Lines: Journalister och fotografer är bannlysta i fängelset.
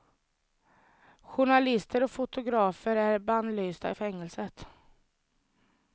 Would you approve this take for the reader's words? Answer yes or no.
yes